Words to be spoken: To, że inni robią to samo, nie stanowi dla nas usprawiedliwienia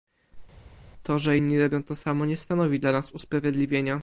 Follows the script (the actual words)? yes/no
yes